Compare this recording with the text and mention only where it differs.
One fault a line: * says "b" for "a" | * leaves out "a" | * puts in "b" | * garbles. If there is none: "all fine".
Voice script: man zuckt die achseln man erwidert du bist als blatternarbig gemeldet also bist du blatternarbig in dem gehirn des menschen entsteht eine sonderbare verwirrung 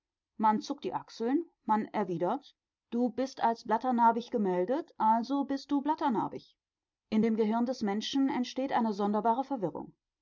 all fine